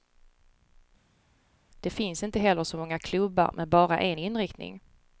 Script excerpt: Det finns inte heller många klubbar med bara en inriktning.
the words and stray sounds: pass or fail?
fail